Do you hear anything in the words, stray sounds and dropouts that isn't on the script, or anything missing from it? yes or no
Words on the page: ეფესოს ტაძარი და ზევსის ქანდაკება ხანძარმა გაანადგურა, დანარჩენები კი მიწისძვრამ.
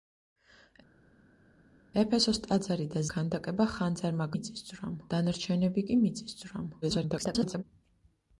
yes